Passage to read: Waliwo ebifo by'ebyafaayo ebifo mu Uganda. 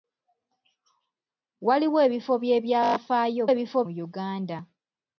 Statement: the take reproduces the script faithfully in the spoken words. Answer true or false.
true